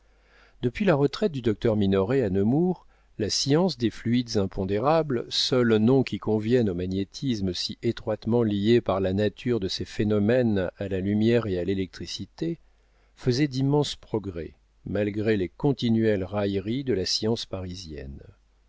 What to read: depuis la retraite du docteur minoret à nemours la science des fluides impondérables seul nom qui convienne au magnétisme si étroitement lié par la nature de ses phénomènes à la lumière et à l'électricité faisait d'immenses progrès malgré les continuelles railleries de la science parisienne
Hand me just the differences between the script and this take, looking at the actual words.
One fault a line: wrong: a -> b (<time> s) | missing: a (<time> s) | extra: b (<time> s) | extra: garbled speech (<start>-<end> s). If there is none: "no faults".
no faults